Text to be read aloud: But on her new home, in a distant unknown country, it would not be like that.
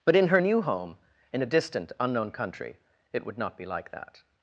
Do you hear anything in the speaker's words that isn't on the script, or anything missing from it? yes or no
yes